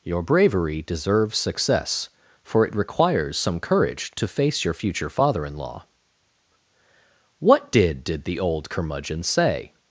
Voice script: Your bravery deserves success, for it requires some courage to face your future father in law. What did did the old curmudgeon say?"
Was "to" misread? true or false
false